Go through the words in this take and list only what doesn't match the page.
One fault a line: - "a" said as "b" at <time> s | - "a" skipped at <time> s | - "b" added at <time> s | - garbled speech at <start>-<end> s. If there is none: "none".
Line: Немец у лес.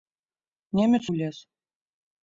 none